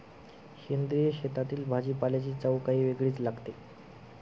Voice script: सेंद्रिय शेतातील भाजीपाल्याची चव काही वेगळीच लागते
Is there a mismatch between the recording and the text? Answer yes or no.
no